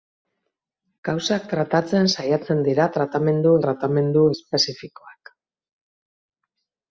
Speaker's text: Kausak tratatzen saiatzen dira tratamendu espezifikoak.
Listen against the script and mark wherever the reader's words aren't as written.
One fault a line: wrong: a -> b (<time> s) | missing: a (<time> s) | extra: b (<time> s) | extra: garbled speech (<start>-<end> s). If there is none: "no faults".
extra: tratamendu (3.6 s)